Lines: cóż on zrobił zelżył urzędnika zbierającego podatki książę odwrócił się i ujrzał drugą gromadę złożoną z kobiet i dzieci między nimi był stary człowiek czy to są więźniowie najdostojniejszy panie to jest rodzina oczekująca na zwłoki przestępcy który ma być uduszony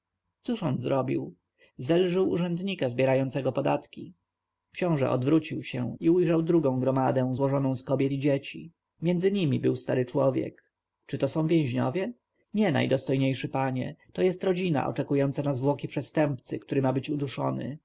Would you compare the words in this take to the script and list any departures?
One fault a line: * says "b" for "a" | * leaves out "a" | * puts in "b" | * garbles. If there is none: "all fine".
* puts in "nie"